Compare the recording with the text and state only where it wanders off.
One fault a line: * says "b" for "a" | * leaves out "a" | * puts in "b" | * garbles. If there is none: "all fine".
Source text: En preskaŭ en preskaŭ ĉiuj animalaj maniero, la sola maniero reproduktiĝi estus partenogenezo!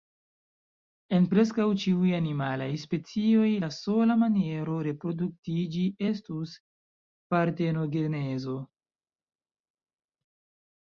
* leaves out "en preskaŭ"
* says "specioj" for "maniero"